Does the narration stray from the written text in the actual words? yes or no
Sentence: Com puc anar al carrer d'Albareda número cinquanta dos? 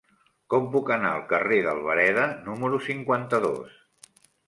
no